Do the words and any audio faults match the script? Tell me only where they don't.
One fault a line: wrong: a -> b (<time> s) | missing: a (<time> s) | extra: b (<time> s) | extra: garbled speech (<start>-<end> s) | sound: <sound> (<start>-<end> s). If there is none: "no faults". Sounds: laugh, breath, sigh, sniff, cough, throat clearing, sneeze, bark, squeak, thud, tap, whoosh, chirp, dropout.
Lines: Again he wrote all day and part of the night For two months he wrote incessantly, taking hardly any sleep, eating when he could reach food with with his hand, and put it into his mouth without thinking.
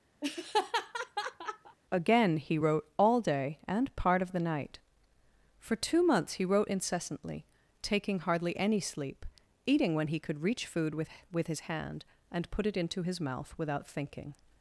sound: laugh (0.2-1.8 s)